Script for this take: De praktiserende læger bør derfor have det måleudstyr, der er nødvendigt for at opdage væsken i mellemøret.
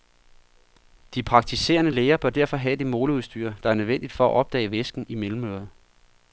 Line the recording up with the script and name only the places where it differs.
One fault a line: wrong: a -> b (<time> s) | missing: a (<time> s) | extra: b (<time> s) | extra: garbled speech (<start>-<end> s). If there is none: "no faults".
no faults